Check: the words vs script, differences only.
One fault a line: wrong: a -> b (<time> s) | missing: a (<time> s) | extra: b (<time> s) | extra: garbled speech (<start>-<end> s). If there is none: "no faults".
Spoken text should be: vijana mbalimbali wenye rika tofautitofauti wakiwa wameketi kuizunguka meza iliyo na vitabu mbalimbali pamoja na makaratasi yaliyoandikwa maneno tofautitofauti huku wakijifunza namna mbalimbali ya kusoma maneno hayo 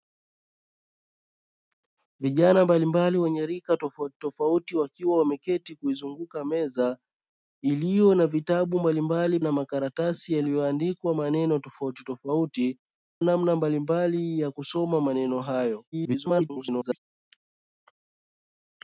missing: pamoja (9.4 s)
missing: huku wakijifunza (12.8 s)
extra: garbled speech (15.9-17.0 s)